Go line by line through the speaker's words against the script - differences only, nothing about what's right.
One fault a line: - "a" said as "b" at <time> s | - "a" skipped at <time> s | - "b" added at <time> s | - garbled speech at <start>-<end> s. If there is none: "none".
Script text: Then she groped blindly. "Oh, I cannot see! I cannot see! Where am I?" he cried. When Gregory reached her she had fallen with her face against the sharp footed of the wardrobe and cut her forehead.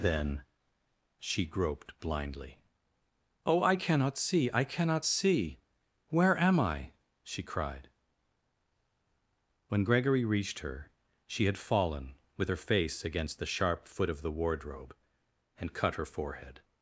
- "he" said as "she" at 7.2 s
- "footed" said as "foot" at 13.9 s